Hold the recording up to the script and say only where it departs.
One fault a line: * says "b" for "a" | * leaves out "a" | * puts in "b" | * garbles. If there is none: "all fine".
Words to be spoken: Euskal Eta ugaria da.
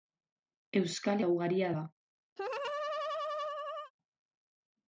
all fine